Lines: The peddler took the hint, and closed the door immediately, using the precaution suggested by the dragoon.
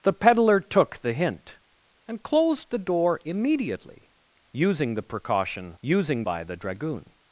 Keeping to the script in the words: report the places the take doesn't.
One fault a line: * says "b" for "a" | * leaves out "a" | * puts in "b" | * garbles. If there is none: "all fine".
* says "using" for "suggested"